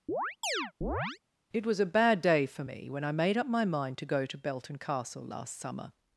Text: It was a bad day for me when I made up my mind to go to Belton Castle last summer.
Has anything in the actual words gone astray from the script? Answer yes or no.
no